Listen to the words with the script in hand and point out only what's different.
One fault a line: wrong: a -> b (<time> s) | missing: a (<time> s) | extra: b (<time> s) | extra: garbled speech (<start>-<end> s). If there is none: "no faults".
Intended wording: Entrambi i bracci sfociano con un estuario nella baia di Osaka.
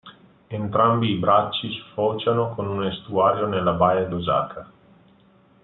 no faults